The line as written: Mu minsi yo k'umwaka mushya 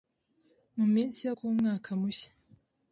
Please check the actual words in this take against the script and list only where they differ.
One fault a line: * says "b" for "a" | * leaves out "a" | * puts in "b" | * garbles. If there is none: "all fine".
all fine